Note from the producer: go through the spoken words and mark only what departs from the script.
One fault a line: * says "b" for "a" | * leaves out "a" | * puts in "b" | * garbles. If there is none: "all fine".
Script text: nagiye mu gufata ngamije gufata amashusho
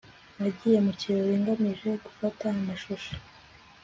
* says "kirori" for "gufata"